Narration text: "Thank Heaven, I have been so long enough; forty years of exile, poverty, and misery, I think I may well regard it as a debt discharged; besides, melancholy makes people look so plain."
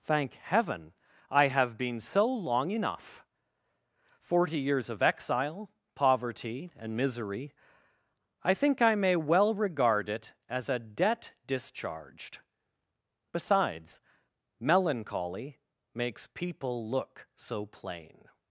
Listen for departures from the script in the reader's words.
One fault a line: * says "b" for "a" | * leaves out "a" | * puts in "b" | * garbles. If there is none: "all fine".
all fine